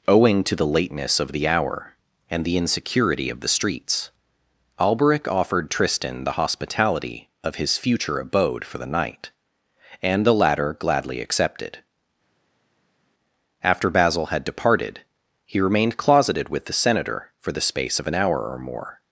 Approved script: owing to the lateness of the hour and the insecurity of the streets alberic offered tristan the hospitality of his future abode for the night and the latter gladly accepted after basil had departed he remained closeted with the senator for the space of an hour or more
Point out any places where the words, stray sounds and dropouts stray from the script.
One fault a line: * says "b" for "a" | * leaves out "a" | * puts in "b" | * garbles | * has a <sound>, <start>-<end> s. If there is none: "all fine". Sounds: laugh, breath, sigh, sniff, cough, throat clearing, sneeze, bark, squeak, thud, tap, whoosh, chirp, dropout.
all fine